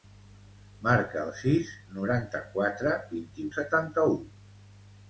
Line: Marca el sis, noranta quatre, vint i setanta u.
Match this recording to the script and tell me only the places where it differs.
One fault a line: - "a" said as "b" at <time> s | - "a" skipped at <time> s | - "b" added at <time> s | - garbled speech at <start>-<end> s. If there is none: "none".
none